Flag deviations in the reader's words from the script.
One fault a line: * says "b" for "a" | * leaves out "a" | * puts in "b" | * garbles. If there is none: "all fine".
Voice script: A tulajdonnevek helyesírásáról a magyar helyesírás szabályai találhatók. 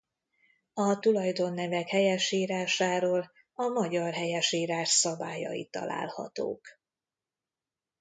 all fine